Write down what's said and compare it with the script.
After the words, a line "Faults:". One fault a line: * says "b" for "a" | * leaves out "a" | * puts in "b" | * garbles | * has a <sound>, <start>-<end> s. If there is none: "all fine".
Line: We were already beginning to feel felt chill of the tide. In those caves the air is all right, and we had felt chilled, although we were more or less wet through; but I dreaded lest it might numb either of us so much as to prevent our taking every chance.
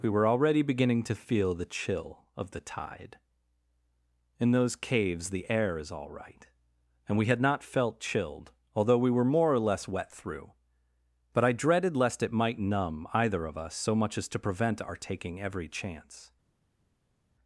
We were already beginning to feel the chill of the tide. In those caves the air is all right, and we had not felt chilled, although we were more or less wet through; but I dreaded lest it might numb either of us so much as to prevent our taking every chance.
Faults:
* says "the" for "felt"
* puts in "not"